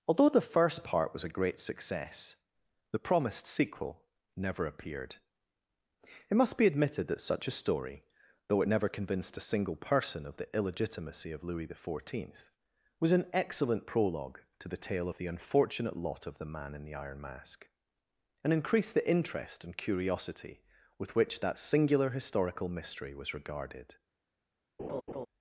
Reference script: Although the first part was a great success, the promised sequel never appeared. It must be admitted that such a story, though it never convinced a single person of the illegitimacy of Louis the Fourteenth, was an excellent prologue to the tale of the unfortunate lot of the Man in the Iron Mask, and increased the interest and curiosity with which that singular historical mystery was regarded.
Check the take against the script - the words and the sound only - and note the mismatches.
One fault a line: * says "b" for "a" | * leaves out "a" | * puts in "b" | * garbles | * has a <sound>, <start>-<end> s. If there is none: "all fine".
* has a laugh, 24.8-25.3 s